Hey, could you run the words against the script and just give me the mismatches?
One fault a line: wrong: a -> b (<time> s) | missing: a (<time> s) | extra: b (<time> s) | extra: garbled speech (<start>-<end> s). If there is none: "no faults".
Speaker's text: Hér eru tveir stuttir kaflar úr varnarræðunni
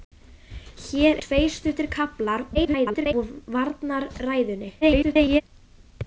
missing: eru (1.2 s)
extra: garbled speech (2.5-3.1 s)
extra: garbled speech (4.8-5.4 s)